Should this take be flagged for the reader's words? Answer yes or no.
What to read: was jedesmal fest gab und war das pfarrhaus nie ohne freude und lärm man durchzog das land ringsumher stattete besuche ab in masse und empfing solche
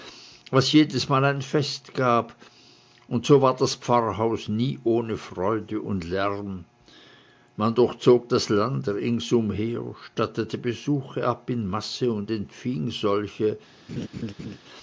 yes